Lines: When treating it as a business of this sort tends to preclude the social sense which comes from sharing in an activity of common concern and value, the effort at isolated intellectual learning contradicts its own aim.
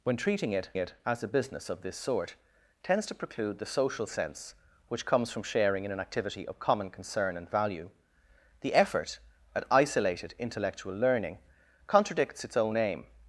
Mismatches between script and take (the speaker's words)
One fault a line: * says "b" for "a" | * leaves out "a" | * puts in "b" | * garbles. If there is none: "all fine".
* puts in "it"